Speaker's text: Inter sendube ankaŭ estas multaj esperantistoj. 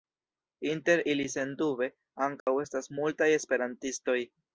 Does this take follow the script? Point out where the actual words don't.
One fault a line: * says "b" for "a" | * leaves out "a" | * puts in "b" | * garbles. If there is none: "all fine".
* puts in "ili"